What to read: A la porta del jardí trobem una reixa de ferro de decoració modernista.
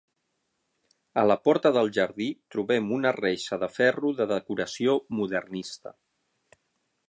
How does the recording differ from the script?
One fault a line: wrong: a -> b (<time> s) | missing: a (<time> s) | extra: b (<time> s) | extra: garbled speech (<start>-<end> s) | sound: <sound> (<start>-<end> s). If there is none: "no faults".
no faults